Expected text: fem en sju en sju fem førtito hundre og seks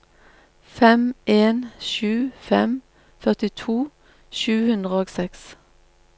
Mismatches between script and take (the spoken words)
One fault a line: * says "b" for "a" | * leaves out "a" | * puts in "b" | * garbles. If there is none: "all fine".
* leaves out "en sju"
* puts in "sju"